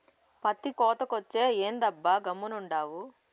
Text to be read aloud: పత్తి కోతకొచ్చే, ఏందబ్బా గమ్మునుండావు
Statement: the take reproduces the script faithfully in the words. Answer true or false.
true